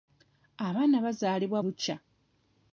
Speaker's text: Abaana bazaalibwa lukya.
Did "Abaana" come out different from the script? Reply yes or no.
no